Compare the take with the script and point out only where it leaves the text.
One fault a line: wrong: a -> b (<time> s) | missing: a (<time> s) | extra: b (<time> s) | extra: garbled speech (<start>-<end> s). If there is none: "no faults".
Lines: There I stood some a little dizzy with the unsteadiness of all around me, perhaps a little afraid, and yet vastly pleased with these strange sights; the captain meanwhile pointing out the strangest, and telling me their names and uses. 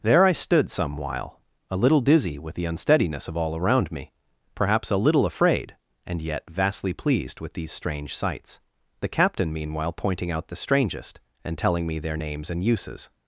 extra: while (1.0 s)